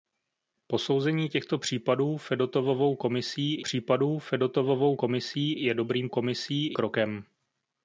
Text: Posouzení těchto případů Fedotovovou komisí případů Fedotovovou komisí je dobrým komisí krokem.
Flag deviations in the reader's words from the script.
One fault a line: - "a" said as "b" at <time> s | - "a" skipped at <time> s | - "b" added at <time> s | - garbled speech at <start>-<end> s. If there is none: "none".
none